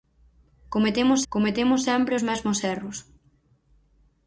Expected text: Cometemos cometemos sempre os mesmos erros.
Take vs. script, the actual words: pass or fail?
pass